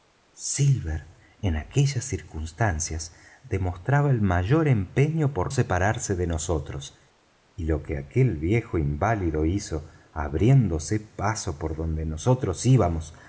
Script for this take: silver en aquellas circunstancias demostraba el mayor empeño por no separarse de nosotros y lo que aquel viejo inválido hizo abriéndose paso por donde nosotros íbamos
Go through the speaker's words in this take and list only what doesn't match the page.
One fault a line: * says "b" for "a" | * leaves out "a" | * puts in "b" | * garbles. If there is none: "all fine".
* leaves out "no"